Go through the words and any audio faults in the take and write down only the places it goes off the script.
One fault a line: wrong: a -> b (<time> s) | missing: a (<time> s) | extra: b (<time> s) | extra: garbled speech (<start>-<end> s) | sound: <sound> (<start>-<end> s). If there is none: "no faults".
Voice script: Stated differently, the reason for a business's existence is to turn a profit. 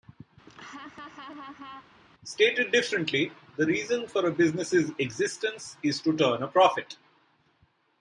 sound: laugh (0.5-2.0 s)